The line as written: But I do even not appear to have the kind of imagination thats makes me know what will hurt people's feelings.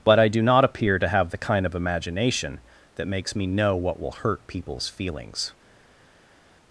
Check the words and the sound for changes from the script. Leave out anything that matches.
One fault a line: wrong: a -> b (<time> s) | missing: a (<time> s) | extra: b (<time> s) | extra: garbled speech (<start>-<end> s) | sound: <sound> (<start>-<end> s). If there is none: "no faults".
missing: even (0.4 s)
wrong: thats -> that (3.0 s)